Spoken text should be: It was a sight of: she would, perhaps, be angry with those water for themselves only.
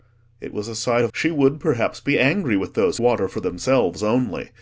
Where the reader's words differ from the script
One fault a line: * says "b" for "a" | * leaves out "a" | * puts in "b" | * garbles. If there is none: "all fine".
all fine